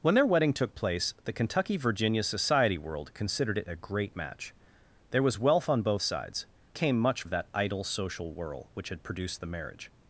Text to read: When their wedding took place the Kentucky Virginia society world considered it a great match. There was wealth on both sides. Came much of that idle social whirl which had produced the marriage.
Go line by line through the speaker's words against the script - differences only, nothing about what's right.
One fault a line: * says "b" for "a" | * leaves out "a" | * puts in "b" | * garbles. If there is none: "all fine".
all fine